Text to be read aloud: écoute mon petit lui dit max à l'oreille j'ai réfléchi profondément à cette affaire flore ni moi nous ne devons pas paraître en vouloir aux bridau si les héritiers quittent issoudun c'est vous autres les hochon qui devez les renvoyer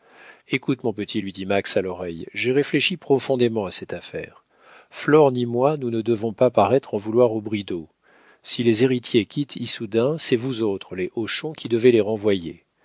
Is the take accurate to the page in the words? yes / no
yes